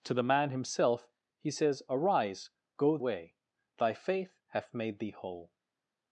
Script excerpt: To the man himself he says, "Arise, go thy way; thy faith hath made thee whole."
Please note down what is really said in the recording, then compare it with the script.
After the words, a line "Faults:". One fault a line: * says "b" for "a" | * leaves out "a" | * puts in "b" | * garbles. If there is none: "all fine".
To the man himself he says, "Arise, go way; thy faith hath made thee whole."
Faults:
* leaves out "thy"